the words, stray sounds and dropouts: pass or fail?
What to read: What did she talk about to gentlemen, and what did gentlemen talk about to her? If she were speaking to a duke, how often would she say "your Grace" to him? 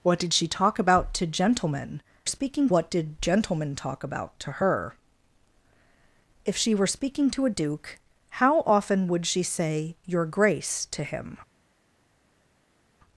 fail